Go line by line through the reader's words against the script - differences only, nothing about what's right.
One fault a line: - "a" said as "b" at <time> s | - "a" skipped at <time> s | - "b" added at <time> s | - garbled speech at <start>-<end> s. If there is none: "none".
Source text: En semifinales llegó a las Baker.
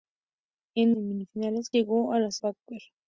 none